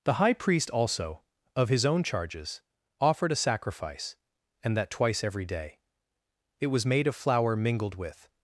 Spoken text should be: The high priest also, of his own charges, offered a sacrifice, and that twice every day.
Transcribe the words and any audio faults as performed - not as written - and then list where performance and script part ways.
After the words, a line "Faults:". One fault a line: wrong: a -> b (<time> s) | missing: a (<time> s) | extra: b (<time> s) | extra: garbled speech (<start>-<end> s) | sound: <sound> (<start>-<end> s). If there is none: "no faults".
The high priest also, of his own charges, offered a sacrifice, and that twice every day. It was made of flour mingled with
Faults:
extra: It was made of flour mingled with (6.6 s)